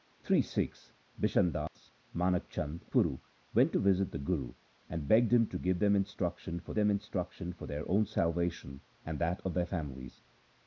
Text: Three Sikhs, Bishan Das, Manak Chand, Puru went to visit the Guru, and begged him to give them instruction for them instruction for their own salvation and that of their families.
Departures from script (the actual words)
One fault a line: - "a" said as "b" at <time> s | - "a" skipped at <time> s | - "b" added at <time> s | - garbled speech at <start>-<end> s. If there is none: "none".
none